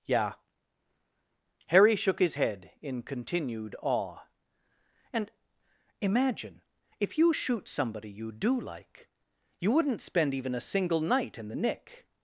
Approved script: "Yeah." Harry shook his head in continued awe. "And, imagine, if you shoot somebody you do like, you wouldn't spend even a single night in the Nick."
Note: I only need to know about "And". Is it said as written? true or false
true